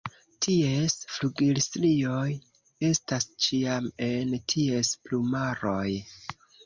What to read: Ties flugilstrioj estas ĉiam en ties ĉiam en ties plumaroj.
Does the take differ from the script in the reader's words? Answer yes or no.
yes